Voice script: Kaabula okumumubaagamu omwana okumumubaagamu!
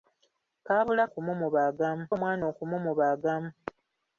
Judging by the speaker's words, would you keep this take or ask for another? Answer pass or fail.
pass